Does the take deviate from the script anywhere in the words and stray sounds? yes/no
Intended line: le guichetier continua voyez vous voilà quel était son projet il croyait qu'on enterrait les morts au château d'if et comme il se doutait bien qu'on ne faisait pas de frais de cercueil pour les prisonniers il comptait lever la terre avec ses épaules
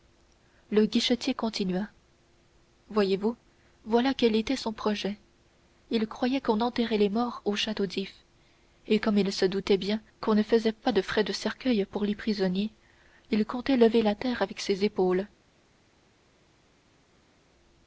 no